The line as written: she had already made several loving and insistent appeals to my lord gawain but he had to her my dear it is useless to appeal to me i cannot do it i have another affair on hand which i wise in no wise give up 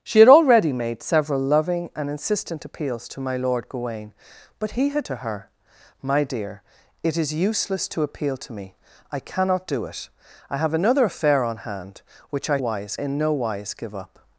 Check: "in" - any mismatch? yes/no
no